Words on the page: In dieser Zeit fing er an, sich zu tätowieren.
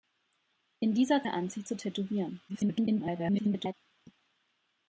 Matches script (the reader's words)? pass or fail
fail